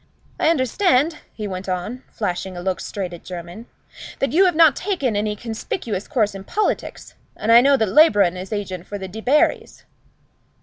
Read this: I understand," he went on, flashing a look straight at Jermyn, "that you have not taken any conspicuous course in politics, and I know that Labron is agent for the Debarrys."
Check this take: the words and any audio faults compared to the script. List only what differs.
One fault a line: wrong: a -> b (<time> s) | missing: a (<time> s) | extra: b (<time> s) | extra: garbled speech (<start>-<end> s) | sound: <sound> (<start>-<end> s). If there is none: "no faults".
no faults